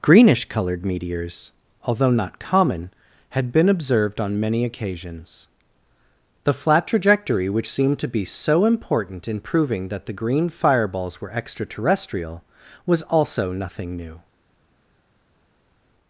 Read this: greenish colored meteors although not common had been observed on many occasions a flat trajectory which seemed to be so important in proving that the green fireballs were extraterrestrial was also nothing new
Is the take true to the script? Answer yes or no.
no